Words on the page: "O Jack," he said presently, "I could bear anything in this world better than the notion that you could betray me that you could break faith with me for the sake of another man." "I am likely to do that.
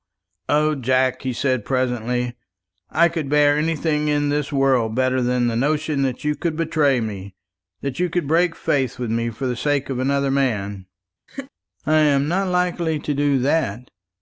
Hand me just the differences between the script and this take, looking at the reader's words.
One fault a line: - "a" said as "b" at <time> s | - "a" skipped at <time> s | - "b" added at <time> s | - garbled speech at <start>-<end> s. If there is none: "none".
- "not" added at 12.3 s